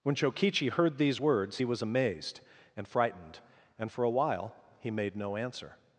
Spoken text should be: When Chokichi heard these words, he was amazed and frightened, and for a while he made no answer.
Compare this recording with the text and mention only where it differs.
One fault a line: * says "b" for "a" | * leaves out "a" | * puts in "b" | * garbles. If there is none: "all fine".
all fine